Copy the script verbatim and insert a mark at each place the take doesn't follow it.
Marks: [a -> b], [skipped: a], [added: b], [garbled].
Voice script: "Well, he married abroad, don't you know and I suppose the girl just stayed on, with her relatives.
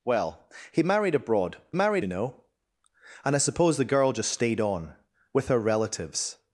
"Well, he married abroad, [don't -> married] you know and I suppose the girl just stayed on, with her relatives.